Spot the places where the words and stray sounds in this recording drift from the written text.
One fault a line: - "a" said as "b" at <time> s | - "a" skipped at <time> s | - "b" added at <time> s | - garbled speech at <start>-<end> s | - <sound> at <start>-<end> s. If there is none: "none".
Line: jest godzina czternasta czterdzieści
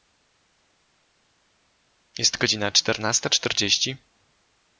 none